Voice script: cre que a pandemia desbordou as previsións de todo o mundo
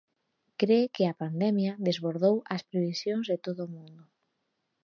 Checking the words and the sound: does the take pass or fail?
pass